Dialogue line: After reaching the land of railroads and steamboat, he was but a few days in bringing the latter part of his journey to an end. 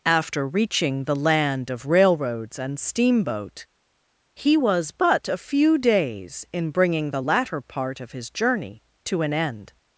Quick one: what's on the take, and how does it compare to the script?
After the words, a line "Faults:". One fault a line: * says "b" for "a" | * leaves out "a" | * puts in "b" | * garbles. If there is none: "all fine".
After reaching the land of railroads and steamboat, he was but a few days in bringing the latter part of his journey to an end.
Faults:
all fine